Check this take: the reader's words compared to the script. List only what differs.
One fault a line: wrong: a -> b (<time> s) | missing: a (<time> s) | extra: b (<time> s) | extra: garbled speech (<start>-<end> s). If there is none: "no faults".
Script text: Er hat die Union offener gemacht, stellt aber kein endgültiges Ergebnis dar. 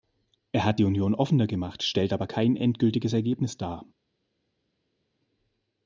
no faults